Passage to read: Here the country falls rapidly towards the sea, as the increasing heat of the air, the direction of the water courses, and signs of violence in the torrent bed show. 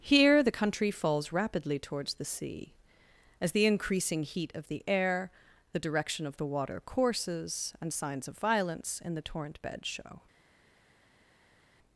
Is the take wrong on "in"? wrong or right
right